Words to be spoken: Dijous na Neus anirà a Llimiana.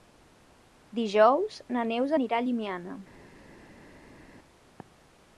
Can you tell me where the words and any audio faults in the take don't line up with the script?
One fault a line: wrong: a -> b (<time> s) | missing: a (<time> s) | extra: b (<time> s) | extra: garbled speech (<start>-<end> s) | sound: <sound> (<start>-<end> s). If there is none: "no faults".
no faults